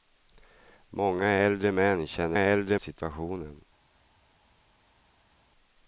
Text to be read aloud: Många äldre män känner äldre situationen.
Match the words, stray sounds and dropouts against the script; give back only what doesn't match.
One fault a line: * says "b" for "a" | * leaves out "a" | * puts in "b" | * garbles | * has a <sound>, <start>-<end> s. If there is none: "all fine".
all fine